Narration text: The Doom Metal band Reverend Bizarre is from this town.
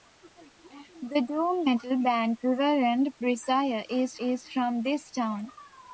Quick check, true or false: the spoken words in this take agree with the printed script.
false